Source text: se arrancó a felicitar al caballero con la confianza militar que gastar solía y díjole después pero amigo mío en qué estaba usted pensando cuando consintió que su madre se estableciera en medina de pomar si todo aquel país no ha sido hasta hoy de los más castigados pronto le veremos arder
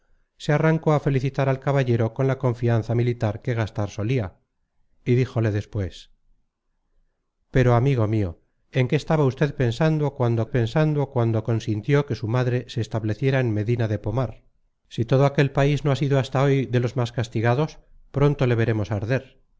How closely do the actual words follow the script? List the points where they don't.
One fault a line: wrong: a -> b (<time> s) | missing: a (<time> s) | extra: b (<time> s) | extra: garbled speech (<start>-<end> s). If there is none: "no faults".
extra: pensando cuando (10.5 s)